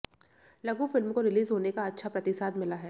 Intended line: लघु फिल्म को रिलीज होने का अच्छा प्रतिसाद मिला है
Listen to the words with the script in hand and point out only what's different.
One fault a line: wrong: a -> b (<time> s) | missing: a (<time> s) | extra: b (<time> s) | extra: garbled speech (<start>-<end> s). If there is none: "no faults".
no faults